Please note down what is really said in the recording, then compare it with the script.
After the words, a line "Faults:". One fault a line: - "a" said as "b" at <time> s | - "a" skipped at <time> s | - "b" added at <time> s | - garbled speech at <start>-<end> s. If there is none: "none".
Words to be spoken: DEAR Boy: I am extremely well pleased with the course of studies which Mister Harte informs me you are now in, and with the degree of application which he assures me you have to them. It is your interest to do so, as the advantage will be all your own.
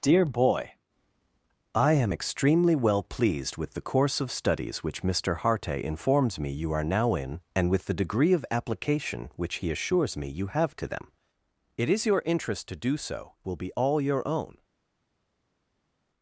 DEAR Boy: I am extremely well pleased with the course of studies which Mister Harte informs me you are now in, and with the degree of application which he assures me you have to them. It is your interest to do so, will be all your own.
Faults:
- "as the advantage" skipped at 13.3 s